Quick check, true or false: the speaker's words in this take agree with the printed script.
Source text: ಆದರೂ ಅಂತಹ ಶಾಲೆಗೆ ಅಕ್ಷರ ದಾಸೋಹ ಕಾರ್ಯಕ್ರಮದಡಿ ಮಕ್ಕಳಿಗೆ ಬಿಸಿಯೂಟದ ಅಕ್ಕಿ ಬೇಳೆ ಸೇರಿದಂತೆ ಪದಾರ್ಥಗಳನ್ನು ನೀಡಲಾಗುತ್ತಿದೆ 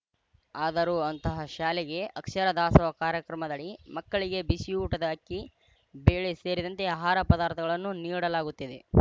false